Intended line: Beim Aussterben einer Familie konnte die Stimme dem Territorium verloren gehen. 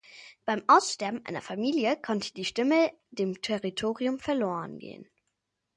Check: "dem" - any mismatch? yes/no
no